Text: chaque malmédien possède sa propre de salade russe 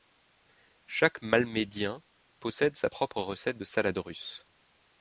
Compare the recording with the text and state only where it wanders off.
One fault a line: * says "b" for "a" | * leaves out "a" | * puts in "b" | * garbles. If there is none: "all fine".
* puts in "recette"